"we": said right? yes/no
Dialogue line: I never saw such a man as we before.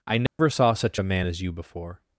no